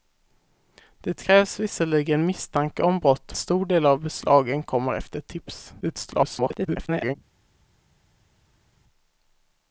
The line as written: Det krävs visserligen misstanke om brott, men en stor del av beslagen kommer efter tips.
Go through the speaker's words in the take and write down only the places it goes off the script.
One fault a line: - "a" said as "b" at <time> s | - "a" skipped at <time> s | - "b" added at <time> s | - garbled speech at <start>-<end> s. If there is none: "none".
- "men en" skipped at 3.4 s
- garbled speech at 5.8-7.2 s